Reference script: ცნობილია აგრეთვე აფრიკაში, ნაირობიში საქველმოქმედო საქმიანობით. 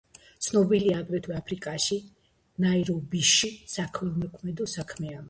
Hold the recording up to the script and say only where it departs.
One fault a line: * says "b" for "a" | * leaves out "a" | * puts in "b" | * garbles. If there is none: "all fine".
all fine